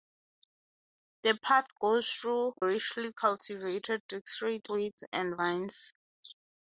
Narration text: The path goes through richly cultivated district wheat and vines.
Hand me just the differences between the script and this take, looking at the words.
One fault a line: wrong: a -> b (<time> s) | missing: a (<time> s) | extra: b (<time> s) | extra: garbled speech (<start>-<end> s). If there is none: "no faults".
no faults